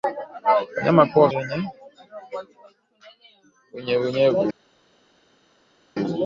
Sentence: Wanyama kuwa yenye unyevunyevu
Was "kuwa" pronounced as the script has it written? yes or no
yes